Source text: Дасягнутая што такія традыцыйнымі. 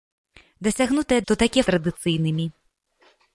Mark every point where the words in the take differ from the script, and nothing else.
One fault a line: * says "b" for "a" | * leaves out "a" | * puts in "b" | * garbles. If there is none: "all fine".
all fine